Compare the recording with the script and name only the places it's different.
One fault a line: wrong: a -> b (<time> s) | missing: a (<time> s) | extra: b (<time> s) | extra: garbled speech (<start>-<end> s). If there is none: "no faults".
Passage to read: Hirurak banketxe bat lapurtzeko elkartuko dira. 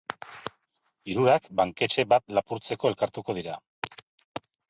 no faults